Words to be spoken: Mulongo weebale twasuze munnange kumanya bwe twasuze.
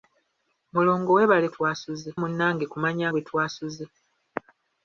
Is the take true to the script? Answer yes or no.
yes